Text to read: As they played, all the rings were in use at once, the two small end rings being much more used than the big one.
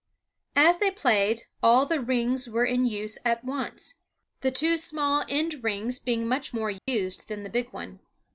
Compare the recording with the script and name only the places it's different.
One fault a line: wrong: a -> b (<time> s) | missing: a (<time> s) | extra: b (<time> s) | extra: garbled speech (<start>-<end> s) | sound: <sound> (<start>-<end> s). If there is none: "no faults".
sound: dropout (6.8-6.9 s)